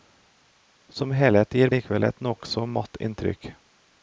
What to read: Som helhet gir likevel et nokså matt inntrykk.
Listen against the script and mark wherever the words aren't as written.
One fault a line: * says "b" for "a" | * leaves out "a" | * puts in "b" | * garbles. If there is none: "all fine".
all fine